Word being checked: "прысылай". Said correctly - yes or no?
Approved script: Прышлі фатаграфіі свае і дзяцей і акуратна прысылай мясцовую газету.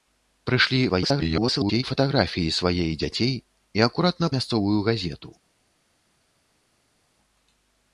no